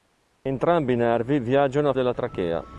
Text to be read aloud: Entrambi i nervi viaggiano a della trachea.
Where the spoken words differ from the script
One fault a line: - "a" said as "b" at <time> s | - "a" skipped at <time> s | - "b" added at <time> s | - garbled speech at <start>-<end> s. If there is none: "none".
none